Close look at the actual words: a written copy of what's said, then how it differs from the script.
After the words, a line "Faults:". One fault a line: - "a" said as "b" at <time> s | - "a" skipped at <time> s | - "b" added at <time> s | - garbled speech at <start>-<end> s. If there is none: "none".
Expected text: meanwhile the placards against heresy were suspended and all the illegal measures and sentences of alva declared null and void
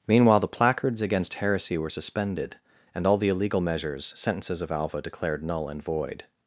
meanwhile the placards against heresy were suspended and all the illegal measures sentences of alva declared null and void
Faults:
- "and" skipped at 4.1 s